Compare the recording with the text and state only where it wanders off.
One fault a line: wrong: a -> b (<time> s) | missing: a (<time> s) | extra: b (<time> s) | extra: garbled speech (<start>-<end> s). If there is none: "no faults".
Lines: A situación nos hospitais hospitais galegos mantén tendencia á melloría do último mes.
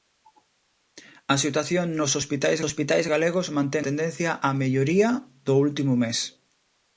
no faults